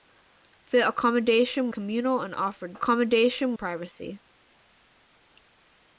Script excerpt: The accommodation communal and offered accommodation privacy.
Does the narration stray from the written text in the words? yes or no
no